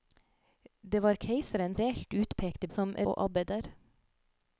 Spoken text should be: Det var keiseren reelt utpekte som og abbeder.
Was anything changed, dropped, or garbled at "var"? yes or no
no